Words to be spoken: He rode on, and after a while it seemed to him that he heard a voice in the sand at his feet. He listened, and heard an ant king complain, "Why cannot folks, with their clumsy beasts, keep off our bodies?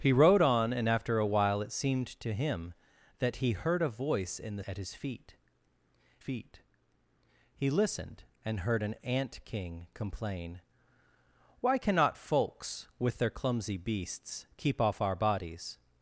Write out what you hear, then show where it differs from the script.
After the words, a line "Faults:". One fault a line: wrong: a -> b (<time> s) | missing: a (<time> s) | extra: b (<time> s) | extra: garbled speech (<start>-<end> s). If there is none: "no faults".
He rode on, and after a while it seemed to him that he heard a voice in the at his feet feet. He listened, and heard an ant king complain, "Why cannot folks, with their clumsy beasts, keep off our bodies?
Faults:
missing: sand (4.6 s)
extra: feet (6.2 s)